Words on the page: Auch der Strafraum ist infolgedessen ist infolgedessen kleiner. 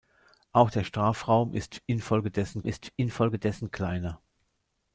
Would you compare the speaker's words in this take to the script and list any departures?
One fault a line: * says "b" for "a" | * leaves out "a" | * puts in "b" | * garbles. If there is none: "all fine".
all fine